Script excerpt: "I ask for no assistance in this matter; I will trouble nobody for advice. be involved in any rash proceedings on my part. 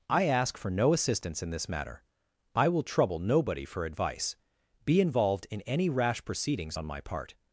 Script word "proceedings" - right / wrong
right